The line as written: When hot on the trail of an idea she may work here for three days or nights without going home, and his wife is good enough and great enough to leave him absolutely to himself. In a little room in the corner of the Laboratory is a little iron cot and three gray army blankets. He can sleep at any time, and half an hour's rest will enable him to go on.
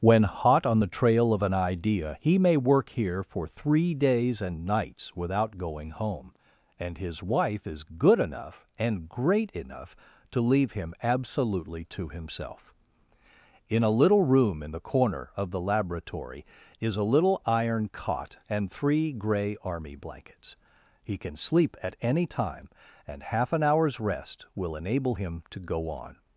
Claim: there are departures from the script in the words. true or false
true